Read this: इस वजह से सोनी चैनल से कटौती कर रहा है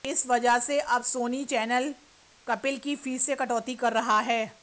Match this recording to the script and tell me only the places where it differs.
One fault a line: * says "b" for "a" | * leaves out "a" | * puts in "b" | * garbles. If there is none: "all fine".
* puts in "अब"
* puts in "कपिल की फीस"